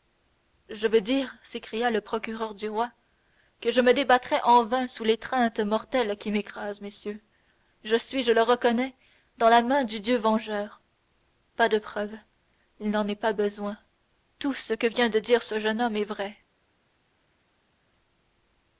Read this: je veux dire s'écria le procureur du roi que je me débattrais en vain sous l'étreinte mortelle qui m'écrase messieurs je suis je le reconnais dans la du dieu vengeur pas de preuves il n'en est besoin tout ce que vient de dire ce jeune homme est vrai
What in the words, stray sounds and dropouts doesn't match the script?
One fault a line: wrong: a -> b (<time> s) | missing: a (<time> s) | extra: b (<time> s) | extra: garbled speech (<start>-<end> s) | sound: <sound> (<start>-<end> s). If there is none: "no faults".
extra: main (9.6 s)
extra: pas (13.2 s)